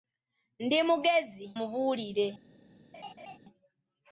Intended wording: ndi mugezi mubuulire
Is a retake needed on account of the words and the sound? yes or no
yes